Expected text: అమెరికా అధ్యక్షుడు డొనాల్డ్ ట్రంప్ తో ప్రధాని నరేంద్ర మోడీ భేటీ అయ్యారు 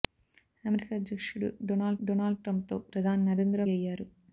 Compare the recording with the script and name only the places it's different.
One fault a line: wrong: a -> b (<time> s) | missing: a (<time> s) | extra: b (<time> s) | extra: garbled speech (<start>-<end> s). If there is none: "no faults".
extra: డొనాల్డ్ (2.0 s)
missing: మోడీ భేటీ (3.6 s)